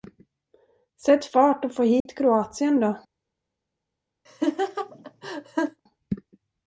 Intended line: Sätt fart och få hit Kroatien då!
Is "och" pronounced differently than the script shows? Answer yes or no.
no